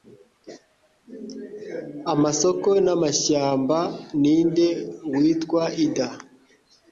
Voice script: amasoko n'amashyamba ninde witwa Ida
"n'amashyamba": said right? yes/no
yes